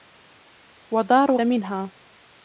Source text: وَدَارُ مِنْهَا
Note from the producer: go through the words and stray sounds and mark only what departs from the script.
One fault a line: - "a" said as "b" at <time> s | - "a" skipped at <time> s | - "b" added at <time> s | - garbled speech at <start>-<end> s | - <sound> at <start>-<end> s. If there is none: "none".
none